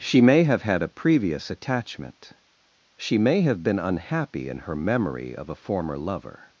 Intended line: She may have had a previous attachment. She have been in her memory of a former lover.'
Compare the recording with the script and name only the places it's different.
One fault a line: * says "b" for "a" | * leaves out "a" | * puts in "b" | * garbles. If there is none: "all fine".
* puts in "may"
* puts in "unhappy"